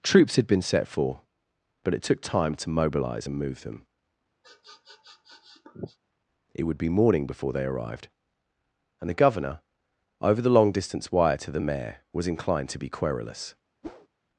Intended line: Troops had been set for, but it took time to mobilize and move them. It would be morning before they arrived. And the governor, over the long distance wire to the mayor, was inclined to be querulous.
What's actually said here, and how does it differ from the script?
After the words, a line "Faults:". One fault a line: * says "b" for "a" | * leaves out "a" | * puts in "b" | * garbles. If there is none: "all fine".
Troops had been set for, but it took time to mobilize and move them. It would be morning before they arrived. And the governor, over the long distance wire to the mayor, was inclined to be querulous.
Faults:
all fine